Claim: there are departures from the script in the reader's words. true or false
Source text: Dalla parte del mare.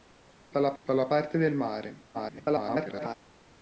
true